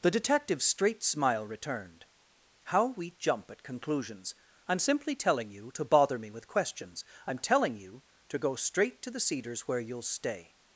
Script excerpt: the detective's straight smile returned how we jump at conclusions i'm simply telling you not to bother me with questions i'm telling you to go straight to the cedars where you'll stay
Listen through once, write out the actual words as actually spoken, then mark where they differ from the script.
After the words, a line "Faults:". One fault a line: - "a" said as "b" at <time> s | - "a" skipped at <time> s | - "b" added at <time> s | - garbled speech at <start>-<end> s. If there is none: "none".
the detective's straight smile returned how we jump at conclusions i'm simply telling you to bother me with questions i'm telling you to go straight to the cedars where you'll stay
Faults:
- "not" skipped at 5.7 s